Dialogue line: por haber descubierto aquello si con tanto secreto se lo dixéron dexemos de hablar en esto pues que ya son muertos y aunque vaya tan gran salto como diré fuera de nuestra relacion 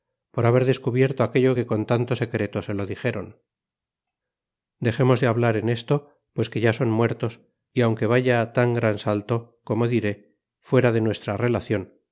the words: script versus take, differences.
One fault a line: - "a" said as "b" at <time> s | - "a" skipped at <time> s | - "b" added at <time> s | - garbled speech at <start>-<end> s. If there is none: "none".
- "si" said as "que" at 1.5 s